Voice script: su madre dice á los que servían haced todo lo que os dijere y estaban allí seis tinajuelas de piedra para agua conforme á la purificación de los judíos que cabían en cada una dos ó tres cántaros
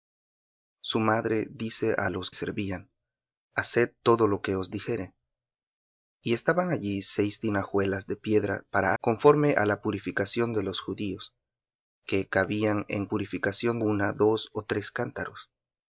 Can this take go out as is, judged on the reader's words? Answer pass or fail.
fail